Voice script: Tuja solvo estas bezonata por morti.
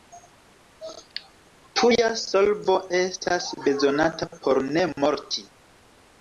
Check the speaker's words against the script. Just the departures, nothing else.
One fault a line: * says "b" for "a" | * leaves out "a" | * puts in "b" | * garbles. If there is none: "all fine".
* puts in "ne"